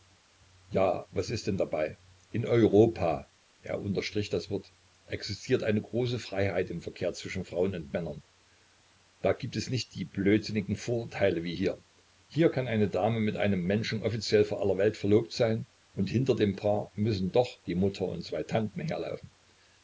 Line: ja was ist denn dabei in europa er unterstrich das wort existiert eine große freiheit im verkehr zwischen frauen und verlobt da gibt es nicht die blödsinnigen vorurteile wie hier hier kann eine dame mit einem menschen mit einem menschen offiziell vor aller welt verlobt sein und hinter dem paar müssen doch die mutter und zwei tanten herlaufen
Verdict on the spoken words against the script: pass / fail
fail